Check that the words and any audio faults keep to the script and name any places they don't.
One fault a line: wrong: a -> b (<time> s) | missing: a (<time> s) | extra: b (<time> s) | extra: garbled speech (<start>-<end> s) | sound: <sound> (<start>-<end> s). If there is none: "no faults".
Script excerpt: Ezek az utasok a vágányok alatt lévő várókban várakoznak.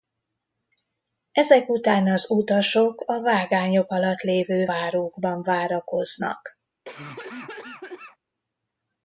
extra: után (1.7 s)
sound: cough (6.9-8.2 s)